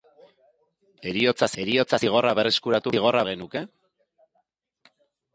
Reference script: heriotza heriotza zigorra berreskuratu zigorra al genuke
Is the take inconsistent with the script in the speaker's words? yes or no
no